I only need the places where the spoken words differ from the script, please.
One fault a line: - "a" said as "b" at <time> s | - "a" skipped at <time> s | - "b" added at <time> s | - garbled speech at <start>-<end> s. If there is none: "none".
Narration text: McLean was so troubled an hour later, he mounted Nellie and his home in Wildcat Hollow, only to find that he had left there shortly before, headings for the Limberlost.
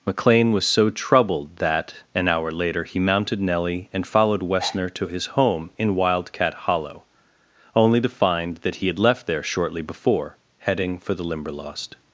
- "that" added at 1.6 s
- "followed Wessner to" added at 4.1 s
- "headings" said as "heading" at 10.6 s